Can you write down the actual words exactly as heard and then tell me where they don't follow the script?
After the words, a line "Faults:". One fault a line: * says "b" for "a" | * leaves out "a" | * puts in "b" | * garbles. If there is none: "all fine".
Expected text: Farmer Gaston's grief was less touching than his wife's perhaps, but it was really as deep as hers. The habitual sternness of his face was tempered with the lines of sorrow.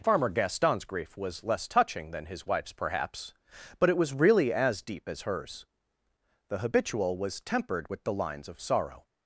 Farmer Gaston's grief was less touching than his wife's perhaps, but it was really as deep as hers. The habitual was tempered with the lines of sorrow.
Faults:
* leaves out "sternness of his face"